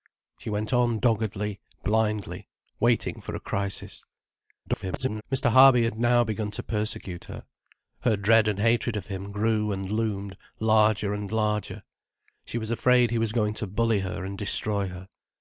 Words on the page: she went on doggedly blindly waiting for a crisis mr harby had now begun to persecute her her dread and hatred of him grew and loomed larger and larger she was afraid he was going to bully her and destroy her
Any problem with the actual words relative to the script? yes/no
yes